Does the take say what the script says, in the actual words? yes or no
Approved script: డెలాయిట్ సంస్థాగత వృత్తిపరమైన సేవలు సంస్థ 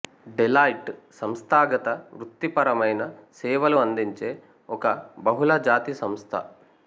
no